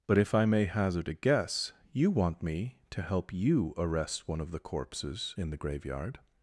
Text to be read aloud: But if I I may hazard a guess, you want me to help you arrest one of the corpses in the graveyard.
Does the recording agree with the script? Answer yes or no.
no